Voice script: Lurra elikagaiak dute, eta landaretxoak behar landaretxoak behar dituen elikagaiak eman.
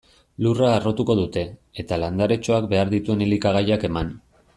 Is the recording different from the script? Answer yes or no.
yes